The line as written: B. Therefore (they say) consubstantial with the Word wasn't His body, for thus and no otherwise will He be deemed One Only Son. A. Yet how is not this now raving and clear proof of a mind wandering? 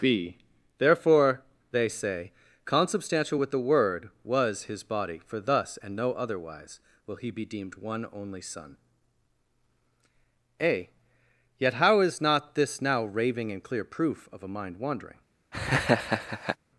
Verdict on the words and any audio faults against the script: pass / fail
fail